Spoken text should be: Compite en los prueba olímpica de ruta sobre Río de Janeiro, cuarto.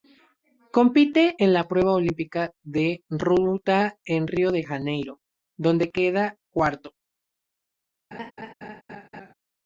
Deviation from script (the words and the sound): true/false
true